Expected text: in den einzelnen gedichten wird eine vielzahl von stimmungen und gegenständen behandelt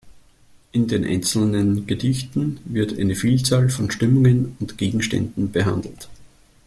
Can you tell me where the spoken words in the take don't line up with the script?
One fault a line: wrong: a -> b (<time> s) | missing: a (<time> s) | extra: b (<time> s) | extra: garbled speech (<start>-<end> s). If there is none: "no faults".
no faults